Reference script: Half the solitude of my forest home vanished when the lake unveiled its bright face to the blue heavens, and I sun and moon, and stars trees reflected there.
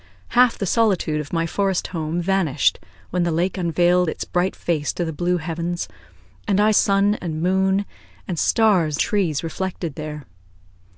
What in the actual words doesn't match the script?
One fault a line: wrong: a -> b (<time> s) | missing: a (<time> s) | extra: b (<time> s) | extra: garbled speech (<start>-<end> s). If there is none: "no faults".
no faults